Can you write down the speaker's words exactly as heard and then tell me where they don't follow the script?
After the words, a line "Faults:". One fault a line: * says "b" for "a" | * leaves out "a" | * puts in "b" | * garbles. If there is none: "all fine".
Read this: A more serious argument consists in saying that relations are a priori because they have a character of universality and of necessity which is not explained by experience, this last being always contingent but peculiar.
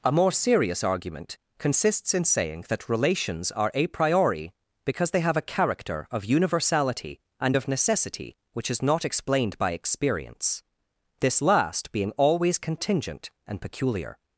A more serious argument consists in saying that relations are a priori because they have a character of universality and of necessity which is not explained by experience, this last being always contingent and peculiar.
Faults:
* says "and" for "but"